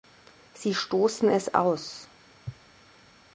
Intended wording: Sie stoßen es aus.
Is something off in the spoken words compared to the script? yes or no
no